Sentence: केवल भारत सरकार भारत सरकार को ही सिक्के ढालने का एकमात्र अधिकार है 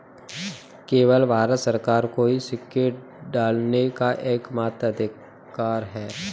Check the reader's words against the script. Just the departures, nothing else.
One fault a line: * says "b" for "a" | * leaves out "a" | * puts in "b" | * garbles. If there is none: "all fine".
* leaves out "भारत सरकार"